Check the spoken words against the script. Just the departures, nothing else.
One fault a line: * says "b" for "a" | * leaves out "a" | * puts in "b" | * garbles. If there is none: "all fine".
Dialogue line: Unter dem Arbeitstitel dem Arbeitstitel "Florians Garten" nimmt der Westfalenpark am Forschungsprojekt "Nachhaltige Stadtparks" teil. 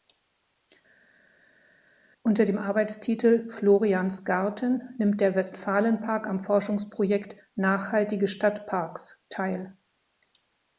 * leaves out "dem Arbeitstitel"